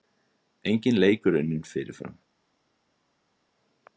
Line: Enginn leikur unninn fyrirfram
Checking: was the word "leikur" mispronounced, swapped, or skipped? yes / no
no